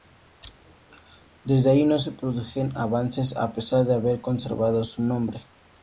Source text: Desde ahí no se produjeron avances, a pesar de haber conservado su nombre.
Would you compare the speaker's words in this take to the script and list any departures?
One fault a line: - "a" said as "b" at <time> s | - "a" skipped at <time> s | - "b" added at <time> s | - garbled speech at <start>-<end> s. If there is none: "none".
none